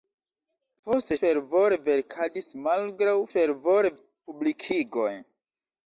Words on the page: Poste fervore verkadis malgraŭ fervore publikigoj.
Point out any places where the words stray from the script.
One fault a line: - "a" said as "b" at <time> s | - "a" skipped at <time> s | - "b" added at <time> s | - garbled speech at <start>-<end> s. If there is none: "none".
none